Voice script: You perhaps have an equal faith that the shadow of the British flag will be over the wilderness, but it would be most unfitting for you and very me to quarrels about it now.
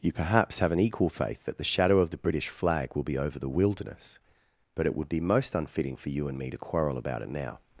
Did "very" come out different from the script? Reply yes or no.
yes